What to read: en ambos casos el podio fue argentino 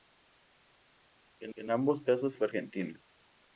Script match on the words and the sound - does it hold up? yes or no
no